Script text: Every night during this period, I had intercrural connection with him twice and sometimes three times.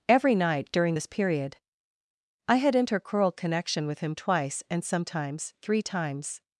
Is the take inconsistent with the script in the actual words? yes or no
no